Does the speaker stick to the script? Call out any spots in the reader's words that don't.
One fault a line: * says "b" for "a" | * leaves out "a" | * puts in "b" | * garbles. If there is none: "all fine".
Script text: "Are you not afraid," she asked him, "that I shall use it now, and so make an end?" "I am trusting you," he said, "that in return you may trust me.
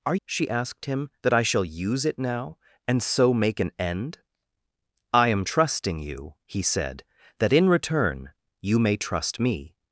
* leaves out "you not afraid"